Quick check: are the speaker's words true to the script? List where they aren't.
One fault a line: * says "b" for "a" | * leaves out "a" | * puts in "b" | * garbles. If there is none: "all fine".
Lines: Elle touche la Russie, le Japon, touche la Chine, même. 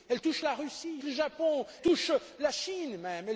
all fine